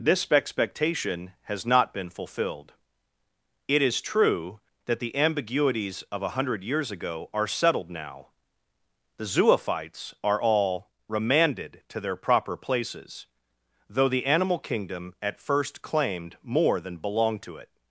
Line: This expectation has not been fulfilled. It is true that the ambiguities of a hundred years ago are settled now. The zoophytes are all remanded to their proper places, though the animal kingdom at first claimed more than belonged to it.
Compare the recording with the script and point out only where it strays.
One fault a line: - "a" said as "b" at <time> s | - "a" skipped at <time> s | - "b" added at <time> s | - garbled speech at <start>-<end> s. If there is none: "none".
none